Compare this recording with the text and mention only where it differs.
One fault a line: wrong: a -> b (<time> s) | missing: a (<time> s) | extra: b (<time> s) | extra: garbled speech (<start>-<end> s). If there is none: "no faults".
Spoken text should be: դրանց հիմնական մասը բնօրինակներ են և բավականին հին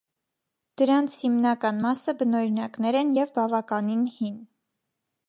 no faults